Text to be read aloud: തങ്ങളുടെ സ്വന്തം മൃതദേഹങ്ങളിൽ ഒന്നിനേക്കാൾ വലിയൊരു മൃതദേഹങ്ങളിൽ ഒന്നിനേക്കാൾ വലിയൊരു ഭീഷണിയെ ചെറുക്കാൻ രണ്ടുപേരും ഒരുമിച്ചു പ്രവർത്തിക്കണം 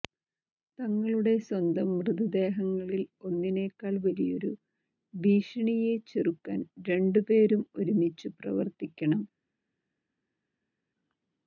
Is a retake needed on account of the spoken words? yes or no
yes